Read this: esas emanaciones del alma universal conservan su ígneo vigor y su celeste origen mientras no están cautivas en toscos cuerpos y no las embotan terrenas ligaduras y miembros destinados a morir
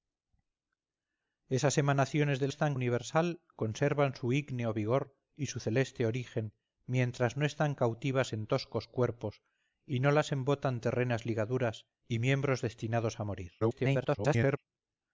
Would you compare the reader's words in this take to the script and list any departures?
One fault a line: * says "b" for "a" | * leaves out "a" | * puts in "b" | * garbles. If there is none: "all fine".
* says "están" for "alma"
* garbles